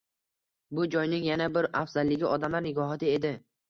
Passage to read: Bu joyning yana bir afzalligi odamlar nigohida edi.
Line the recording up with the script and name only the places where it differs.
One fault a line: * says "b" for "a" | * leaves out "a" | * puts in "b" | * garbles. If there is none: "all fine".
all fine